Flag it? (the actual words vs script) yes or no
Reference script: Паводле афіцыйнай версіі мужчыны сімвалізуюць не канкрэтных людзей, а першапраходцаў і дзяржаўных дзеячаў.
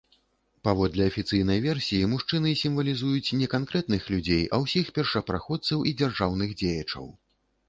yes